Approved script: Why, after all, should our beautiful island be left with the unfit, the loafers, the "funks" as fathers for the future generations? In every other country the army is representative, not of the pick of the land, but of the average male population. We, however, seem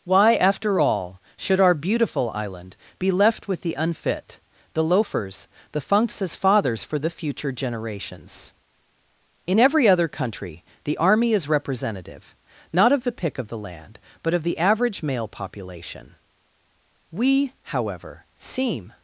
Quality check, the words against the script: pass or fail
pass